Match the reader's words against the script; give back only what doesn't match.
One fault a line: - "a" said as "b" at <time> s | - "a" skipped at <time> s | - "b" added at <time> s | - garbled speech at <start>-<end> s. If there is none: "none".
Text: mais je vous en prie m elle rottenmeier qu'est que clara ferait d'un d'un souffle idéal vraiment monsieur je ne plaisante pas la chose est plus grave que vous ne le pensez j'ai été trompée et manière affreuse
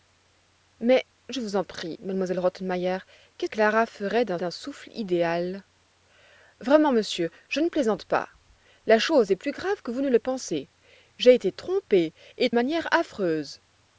none